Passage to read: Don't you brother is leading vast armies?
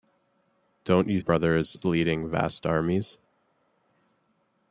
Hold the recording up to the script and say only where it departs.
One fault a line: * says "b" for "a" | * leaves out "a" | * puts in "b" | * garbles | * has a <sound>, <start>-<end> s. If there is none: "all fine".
all fine